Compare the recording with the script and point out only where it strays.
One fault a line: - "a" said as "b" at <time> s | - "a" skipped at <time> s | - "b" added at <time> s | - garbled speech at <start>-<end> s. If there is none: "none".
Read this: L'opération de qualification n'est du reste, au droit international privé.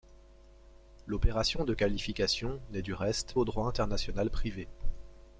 none